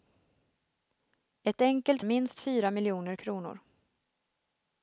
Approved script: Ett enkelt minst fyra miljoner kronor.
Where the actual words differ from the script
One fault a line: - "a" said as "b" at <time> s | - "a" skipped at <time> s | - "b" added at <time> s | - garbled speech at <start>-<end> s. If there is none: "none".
none